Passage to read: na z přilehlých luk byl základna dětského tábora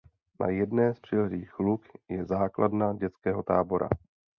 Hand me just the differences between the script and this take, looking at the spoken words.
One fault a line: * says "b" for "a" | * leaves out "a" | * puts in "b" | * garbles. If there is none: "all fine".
* puts in "jedné"
* says "je" for "byl"